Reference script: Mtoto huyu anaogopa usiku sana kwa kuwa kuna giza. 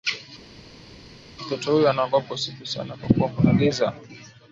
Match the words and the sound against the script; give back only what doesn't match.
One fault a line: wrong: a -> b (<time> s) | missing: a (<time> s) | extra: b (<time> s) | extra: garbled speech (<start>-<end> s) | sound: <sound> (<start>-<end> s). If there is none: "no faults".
no faults